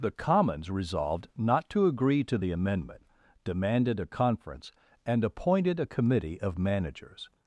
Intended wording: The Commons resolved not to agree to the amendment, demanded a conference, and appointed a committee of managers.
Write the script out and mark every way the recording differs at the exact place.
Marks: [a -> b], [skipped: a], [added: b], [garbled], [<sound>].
The Commons resolved not to agree to the amendment, demanded a conference, and appointed a committee of managers.